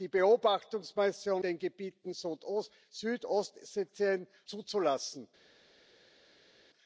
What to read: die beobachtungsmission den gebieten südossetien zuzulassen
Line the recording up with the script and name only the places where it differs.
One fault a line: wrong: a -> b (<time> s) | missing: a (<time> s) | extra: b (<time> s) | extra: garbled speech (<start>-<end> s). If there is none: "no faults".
no faults